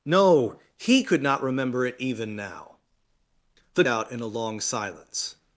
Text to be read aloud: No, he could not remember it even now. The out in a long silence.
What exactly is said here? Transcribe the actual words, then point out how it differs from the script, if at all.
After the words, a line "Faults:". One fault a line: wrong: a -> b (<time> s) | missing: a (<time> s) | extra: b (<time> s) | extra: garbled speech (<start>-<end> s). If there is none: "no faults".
No, he could not remember it even now. The out in a long silence.
Faults:
no faults